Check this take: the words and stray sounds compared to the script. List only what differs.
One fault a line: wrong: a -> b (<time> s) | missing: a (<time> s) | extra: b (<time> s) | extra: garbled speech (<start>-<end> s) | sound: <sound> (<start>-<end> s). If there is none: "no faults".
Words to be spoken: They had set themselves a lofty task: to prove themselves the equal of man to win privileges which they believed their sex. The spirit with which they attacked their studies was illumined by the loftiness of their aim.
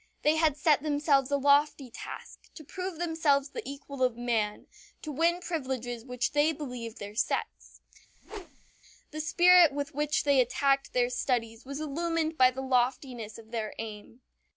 sound: whoosh (8.1-8.7 s)